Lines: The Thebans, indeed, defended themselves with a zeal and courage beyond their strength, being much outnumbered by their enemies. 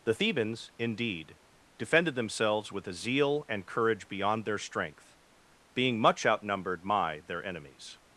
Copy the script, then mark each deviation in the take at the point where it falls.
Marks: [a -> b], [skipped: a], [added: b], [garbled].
The Thebans, indeed, defended themselves with a zeal and courage beyond their strength, being much outnumbered [by -> my] their enemies.